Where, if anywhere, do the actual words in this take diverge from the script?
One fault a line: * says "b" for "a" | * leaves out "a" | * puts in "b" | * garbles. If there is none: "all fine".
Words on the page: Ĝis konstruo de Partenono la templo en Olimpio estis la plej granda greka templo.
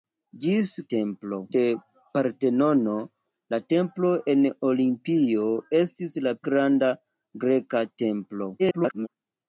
* says "templo" for "konstruo"
* leaves out "plej"
* garbles